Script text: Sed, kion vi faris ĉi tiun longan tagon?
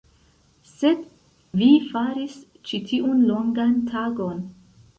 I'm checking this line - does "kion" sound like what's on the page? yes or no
no